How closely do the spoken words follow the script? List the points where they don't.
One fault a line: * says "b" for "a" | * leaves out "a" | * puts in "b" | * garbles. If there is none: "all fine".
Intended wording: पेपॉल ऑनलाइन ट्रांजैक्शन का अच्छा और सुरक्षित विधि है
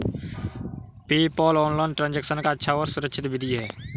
all fine